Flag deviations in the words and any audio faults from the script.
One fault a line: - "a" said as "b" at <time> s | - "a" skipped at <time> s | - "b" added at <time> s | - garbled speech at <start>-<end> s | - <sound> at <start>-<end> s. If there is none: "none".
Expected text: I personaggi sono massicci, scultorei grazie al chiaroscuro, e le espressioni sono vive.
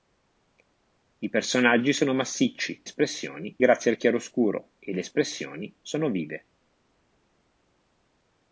- "scultorei" said as "espressioni" at 2.8 s